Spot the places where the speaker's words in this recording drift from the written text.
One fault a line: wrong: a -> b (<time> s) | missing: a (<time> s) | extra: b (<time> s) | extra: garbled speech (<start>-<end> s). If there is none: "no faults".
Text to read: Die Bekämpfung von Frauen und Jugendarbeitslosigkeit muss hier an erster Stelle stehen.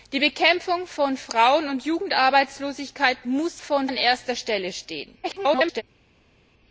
wrong: hier -> von (3.6 s)
extra: garbled speech (5.2-5.8 s)